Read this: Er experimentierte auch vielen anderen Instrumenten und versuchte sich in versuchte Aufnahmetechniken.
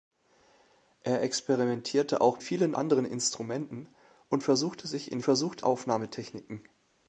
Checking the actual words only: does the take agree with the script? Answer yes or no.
yes